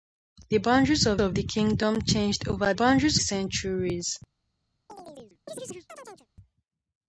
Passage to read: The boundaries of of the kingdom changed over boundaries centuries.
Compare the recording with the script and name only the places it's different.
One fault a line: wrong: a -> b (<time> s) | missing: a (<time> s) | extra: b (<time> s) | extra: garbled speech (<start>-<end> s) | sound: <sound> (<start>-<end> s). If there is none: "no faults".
sound: chirp (4.9-6.3 s)